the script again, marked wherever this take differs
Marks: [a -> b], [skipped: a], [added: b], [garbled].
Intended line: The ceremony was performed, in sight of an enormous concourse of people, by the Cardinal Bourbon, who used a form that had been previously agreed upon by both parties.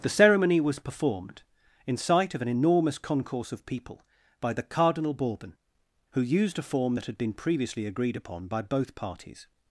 The ceremony was performed, in sight of an enormous concourse of people, by the Cardinal Bourbon, who used a form that had been previously agreed upon by both parties.